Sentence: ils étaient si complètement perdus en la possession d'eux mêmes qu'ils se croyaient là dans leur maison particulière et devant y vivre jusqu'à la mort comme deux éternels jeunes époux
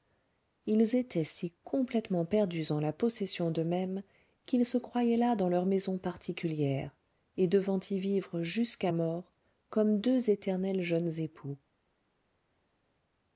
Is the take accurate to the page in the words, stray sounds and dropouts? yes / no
no